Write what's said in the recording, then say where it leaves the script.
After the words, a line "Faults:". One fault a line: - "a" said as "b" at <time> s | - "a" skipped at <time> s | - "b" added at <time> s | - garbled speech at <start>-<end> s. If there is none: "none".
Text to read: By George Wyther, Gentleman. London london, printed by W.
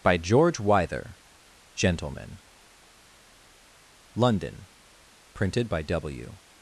By George Wyther, Gentleman. London, printed by W.
Faults:
- "london" skipped at 4.7 s